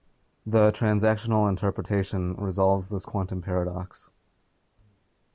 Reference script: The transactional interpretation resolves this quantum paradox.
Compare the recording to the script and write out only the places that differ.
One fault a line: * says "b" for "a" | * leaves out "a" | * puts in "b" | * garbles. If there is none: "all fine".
all fine